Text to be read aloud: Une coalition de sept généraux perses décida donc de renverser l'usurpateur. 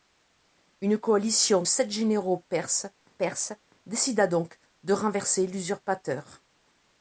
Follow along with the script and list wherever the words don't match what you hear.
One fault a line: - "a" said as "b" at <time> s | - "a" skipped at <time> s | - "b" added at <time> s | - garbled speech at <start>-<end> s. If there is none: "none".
- "de" skipped at 1.6 s
- "perses" added at 3.2 s